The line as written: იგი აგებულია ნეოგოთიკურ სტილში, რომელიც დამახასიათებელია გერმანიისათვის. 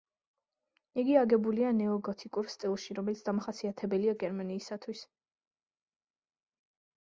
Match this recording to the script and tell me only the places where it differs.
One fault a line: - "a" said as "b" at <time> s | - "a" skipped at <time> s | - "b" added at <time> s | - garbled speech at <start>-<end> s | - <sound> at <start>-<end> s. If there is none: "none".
none